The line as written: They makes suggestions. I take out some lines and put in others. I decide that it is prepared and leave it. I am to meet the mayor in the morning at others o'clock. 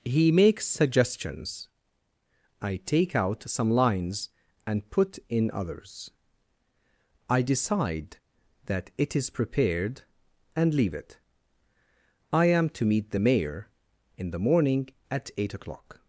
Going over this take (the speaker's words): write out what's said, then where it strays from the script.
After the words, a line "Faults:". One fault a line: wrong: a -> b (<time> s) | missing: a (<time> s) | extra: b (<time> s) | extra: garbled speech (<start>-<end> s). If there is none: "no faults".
He makes suggestions. I take out some lines and put in others. I decide that it is prepared and leave it. I am to meet the mayor in the morning at eight o'clock.
Faults:
wrong: They -> He (0.0 s)
wrong: others -> eight (15.4 s)